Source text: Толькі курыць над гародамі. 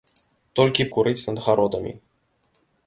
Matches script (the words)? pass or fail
pass